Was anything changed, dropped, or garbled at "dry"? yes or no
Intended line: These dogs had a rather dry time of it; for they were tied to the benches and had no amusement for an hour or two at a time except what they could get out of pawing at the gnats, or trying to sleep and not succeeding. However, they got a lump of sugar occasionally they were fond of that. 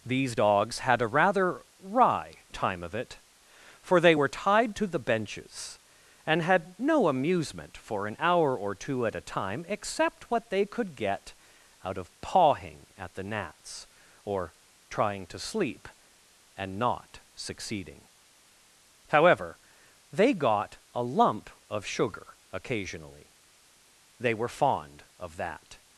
yes